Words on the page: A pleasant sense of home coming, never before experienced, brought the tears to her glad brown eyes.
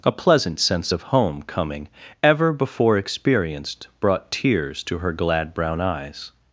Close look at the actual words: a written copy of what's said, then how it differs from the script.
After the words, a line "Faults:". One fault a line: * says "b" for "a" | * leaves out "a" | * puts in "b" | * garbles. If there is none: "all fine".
A pleasant sense of home coming, ever before experienced, brought tears to her glad brown eyes.
Faults:
* says "ever" for "never"
* leaves out "the"